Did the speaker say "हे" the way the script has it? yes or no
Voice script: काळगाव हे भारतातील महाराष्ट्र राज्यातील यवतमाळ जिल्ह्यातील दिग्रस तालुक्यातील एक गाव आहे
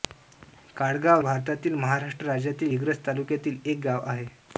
no